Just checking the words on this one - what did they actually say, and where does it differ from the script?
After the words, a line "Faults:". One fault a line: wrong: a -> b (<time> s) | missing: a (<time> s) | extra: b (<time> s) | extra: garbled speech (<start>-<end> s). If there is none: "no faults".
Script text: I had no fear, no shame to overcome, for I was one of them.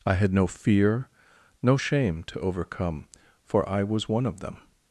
I had no fear, no shame to overcome, for I was one of them.
Faults:
no faults